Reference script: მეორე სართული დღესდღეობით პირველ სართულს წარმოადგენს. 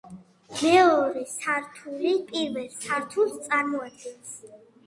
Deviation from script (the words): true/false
true